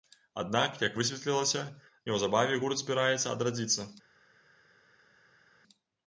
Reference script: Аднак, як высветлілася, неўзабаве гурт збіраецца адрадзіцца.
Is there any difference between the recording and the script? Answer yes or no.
no